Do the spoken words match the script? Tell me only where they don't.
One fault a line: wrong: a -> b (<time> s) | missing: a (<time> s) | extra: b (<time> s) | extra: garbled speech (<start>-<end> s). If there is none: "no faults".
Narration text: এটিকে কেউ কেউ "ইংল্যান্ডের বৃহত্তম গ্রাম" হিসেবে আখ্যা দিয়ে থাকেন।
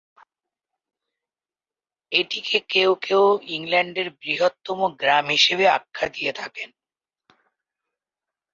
no faults